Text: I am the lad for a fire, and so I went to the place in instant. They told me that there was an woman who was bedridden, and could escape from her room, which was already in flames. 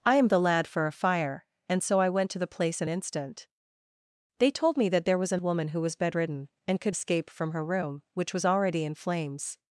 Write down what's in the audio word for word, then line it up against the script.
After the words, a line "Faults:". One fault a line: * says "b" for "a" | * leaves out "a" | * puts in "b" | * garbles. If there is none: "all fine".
I am the lad for a fire, and so I went to the place in instant. They told me that there was an woman who was bedridden, and could escape from her room, which was already in flames.
Faults:
all fine